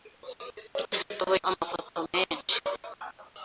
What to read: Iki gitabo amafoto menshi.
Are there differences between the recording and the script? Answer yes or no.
no